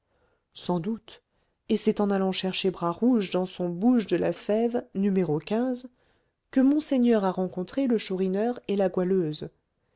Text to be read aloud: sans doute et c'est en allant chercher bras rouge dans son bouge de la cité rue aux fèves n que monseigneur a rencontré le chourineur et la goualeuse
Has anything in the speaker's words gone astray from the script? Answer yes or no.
yes